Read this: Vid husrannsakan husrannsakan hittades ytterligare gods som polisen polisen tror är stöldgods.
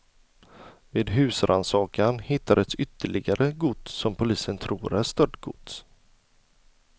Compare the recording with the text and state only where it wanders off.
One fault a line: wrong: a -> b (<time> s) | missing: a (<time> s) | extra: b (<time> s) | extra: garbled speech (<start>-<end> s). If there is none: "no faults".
missing: husrannsakan (2.2 s)
missing: polisen (4.6 s)